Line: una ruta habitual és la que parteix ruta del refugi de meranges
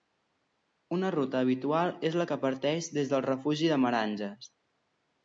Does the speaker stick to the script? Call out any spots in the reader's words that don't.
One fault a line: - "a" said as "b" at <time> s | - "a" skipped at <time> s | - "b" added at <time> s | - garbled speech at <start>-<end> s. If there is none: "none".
- "ruta" said as "des" at 3.0 s